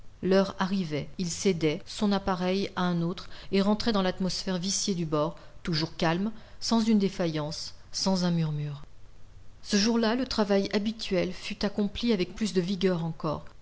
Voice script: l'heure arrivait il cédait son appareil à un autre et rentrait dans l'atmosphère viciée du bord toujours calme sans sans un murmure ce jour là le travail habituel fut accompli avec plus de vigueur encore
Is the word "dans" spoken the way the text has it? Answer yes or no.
yes